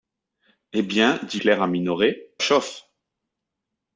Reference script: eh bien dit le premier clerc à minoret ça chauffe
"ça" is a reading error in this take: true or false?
true